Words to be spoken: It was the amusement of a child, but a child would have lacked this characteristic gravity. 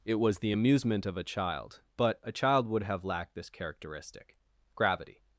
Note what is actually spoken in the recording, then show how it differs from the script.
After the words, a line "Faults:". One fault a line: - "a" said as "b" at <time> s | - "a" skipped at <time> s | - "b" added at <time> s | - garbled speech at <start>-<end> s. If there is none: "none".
It was the amusement of a child, but a child would have lacked this characteristic gravity.
Faults:
none